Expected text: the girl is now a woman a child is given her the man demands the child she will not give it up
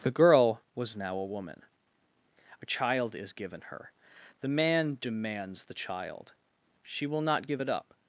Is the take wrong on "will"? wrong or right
right